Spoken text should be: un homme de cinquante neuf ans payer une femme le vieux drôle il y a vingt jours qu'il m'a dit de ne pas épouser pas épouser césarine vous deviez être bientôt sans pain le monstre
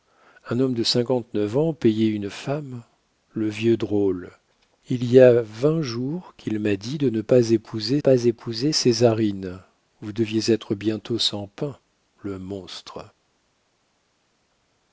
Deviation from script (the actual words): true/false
false